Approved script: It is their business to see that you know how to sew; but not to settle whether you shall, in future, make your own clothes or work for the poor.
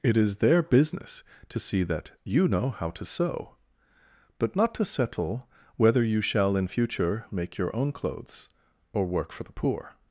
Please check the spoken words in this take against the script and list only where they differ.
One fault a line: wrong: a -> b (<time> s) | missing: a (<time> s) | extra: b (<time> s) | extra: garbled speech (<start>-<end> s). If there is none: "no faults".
no faults